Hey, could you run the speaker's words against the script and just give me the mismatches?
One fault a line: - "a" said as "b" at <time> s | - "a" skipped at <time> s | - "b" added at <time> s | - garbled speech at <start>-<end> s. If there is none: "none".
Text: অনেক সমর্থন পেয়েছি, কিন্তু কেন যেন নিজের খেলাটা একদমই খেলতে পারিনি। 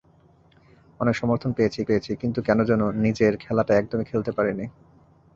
- "পেয়েছি" added at 1.8 s